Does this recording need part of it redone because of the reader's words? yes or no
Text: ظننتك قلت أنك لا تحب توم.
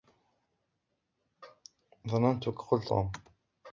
yes